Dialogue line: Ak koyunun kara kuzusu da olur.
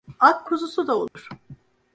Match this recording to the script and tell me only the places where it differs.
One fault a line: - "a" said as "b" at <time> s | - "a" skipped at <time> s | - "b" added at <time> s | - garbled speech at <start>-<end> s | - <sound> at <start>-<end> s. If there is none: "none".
- "koyunun kara" skipped at 0.5 s
- dropout at 1.1-1.2 s